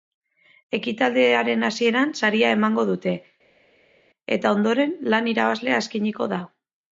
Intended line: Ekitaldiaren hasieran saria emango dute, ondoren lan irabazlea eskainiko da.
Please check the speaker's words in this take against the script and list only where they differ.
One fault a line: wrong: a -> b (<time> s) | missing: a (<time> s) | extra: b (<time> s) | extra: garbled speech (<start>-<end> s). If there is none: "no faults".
extra: eta (4.4 s)